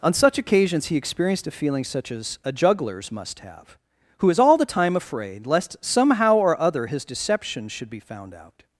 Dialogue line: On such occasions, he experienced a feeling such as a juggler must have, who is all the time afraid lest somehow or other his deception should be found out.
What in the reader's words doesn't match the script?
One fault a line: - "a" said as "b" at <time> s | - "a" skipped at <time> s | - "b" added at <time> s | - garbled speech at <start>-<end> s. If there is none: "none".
- "juggler" said as "jugglers" at 2.5 s